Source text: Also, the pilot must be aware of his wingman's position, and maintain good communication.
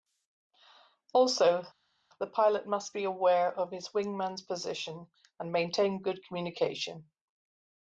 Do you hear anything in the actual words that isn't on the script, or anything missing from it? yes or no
no